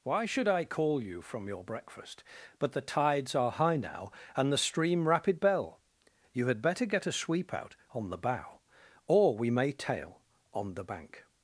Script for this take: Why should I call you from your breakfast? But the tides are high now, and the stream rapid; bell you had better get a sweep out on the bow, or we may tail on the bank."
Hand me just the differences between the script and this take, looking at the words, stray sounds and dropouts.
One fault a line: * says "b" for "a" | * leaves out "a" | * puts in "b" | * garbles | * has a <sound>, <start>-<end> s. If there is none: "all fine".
all fine